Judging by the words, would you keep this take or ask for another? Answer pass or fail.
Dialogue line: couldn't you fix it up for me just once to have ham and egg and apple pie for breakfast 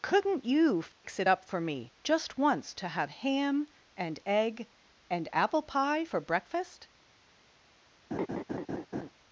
pass